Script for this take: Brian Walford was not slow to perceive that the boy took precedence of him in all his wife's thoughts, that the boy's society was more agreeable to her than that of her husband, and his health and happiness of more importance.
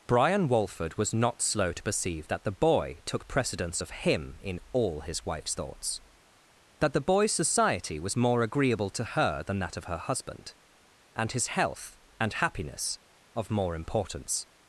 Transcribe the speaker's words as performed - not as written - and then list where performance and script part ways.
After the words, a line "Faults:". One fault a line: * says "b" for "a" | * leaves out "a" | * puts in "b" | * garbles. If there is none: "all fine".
Brian Walford was not slow to perceive that the boy took precedence of him in all his wife's thoughts, that the boy's society was more agreeable to her than that of her husband, and his health and happiness of more importance.
Faults:
all fine